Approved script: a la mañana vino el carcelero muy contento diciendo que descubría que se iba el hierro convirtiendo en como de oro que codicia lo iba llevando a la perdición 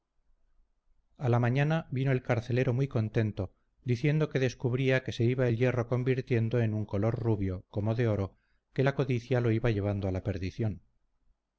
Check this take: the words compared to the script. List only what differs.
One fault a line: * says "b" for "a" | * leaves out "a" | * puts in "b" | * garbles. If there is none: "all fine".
* puts in "un color rubio"
* puts in "la"